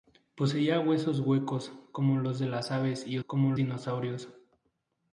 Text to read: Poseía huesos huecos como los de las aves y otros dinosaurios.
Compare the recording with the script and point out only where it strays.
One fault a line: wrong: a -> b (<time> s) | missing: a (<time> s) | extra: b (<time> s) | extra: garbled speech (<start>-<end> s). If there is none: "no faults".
wrong: otros -> como (3.3 s)